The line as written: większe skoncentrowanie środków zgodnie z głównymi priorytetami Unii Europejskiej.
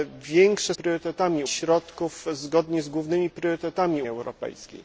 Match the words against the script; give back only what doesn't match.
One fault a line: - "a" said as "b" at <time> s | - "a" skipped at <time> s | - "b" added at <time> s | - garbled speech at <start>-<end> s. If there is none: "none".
- "skoncentrowanie" said as "priorytetami" at 0.7 s
- "Unii" skipped at 4.0 s